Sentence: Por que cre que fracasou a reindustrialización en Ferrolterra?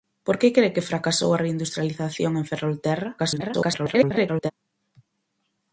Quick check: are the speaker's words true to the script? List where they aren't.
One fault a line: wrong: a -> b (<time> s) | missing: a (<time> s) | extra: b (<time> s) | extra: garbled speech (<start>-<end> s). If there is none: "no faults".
extra: garbled speech (3.2-4.5 s)